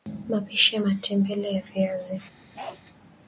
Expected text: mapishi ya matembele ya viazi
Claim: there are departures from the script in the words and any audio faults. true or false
true